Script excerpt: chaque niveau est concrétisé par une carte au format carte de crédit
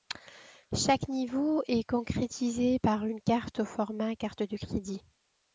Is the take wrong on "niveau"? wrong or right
right